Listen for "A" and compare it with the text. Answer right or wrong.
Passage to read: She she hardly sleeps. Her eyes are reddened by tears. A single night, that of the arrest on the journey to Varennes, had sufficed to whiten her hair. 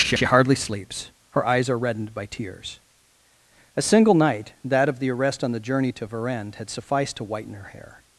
right